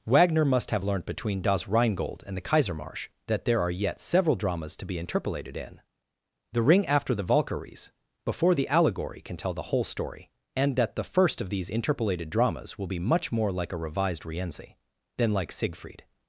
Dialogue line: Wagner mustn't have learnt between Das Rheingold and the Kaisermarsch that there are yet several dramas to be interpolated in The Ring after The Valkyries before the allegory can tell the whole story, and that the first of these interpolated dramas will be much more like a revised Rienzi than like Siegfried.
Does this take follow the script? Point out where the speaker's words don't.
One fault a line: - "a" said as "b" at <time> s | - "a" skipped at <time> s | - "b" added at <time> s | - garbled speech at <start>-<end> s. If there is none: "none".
- "mustn't" said as "must" at 0.5 s